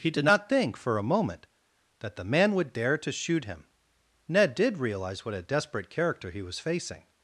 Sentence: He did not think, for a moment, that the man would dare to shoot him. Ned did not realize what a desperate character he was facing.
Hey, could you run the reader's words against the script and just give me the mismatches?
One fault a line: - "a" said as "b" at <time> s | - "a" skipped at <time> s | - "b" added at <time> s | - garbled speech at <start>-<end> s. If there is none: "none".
- "not" skipped at 4.8 s